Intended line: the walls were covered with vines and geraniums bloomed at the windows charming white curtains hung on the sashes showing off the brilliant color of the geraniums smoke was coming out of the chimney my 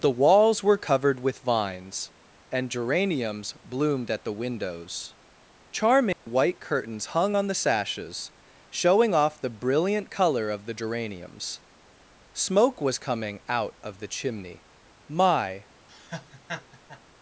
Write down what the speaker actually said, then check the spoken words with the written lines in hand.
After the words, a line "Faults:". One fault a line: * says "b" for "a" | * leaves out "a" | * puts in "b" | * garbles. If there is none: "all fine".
the walls were covered with vines and geraniums bloomed at the windows charming white curtains hung on the sashes showing off the brilliant color of the geraniums smoke was coming out of the chimney my
Faults:
all fine